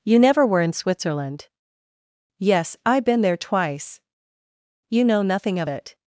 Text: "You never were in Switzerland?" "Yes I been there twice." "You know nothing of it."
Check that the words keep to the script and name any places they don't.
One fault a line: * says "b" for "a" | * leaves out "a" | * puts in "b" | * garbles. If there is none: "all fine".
all fine